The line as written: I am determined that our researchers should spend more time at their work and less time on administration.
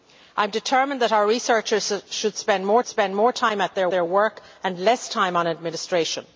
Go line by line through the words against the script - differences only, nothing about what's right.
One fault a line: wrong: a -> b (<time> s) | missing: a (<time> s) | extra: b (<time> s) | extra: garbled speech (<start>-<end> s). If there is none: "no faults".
extra: spend more (2.8 s)
extra: their (3.9 s)